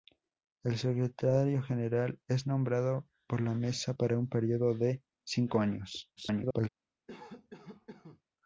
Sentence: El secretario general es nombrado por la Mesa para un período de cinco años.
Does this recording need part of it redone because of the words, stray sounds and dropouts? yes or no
yes